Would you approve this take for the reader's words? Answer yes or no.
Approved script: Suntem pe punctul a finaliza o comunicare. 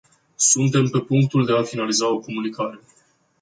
no